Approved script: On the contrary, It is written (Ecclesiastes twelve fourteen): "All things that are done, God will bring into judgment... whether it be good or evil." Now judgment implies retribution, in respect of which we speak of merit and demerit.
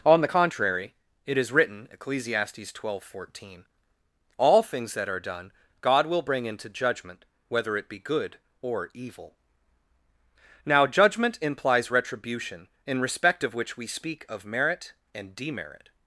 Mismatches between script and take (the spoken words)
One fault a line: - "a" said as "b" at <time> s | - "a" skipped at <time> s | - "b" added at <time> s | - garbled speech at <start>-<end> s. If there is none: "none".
none